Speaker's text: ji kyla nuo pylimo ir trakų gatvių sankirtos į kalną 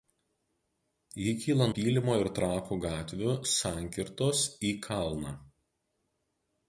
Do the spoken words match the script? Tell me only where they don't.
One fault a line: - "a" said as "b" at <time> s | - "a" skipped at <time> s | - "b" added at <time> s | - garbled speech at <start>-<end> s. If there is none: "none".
- "nuo" skipped at 1.7 s